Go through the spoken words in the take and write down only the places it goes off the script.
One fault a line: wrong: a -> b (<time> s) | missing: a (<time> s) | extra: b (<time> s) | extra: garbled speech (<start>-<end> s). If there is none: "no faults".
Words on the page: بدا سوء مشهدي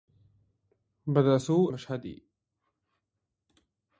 no faults